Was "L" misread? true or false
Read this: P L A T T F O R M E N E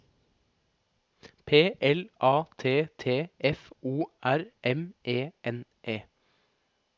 false